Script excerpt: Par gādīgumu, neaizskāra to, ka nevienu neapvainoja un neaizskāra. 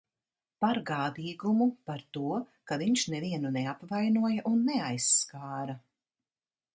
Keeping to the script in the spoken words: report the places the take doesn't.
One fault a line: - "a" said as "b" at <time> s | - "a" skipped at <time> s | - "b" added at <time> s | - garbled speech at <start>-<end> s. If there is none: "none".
- "neaizskāra" said as "par" at 1.9 s
- "viņš" added at 2.8 s